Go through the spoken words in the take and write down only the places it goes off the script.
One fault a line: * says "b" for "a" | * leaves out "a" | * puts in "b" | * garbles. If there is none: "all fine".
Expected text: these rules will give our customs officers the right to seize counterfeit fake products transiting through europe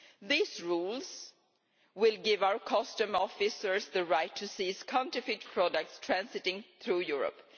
* leaves out "fake"